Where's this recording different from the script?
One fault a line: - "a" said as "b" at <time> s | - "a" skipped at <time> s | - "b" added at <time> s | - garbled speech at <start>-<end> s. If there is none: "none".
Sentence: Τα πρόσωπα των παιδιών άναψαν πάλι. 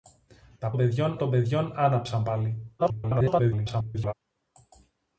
- "πρόσωπα" said as "παιδιών" at 0.8 s
- garbled speech at 2.8-4.1 s